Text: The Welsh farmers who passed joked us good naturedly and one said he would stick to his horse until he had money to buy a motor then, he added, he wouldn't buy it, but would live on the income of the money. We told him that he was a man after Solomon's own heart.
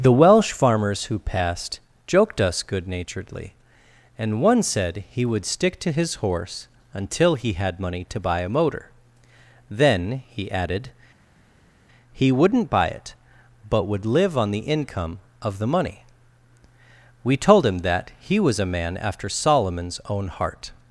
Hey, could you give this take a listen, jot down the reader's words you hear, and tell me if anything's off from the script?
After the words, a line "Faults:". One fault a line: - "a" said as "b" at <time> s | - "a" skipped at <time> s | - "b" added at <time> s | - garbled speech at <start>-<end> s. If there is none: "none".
The Welsh farmers who passed joked us good naturedly and one said he would stick to his horse until he had money to buy a motor then, he added, he wouldn't buy it, but would live on the income of the money. We told him that he was a man after Solomon's own heart.
Faults:
none